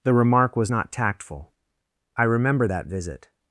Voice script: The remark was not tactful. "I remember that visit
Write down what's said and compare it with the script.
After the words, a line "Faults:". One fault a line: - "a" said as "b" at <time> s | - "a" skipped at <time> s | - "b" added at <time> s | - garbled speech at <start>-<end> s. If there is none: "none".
The remark was not tactful. "I remember that visit
Faults:
none